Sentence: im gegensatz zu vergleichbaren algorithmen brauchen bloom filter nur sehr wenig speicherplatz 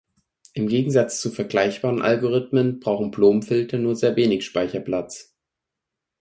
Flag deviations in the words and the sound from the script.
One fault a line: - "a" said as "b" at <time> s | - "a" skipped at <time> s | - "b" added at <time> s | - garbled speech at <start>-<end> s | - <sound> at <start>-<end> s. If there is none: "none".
none